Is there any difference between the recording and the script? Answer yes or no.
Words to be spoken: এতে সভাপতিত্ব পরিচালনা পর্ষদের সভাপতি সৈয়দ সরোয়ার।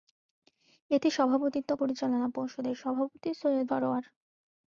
no